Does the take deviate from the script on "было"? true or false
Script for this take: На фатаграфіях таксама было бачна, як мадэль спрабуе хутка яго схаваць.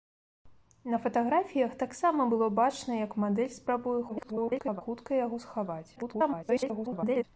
false